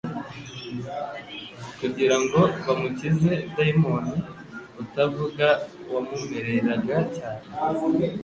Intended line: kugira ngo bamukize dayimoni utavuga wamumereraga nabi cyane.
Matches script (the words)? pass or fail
fail